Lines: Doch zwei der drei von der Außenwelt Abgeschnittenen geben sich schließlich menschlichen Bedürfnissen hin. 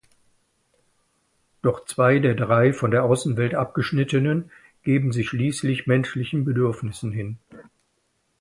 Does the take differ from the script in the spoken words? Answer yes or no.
no